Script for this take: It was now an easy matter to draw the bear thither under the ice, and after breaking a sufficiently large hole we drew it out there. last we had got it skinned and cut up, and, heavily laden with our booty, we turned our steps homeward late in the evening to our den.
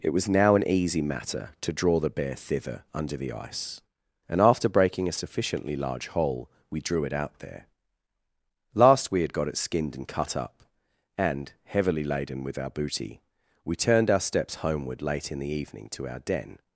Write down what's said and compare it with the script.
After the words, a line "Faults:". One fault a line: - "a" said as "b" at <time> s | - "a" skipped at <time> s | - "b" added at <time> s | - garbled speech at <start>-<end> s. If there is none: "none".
It was now an easy matter to draw the bear thither under the ice, and after breaking a sufficiently large hole we drew it out there. last we had got it skinned and cut up, and, heavily laden with our booty, we turned our steps homeward late in the evening to our den.
Faults:
none